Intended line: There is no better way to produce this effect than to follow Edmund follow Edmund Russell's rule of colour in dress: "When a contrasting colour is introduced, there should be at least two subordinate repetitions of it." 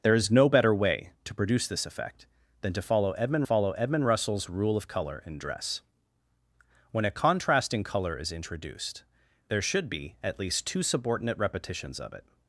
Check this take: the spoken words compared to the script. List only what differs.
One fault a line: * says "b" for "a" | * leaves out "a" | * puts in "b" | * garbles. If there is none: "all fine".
all fine